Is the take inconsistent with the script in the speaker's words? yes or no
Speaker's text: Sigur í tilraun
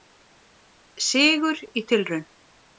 no